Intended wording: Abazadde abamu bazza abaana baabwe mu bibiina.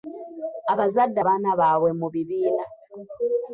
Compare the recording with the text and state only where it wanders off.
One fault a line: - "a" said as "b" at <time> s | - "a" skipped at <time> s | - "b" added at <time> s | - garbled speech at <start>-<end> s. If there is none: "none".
- "abamu bazza" skipped at 1.2 s